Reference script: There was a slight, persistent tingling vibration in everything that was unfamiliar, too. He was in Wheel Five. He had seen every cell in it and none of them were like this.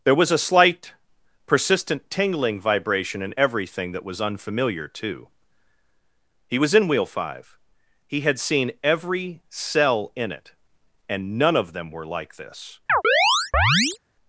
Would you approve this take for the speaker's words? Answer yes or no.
yes